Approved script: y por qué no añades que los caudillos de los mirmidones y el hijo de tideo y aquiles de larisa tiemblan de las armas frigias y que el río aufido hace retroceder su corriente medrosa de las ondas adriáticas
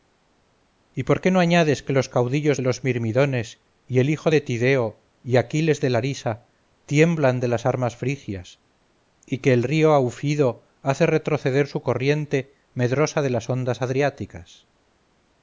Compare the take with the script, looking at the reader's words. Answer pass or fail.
pass